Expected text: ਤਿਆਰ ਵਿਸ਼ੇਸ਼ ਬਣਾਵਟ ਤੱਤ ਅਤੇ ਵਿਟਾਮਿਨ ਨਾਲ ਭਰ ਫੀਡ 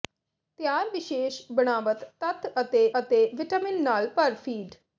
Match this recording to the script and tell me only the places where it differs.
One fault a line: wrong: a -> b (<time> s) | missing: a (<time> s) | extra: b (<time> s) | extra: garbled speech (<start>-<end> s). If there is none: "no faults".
extra: ਅਤੇ (3.0 s)